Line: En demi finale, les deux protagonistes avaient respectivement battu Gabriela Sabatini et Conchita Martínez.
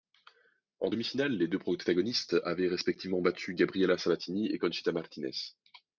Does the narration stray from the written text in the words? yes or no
no